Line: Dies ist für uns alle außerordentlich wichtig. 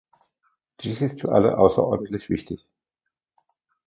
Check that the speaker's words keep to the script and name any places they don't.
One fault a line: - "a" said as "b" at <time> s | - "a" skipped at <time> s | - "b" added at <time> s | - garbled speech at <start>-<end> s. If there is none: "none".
- "uns" skipped at 1.3 s